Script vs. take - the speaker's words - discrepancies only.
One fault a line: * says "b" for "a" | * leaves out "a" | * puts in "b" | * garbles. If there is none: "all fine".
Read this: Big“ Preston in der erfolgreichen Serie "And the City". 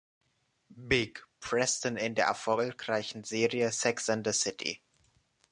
* puts in "Sex"